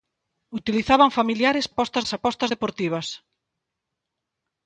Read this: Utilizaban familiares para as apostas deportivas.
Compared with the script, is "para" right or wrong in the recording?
wrong